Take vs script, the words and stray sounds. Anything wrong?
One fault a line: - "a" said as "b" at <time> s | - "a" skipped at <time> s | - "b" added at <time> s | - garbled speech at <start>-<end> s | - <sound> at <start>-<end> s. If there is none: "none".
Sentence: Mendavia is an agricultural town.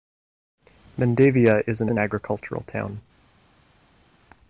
- "an" added at 1.9 s